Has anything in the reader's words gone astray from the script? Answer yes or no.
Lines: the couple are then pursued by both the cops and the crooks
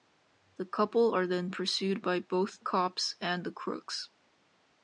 yes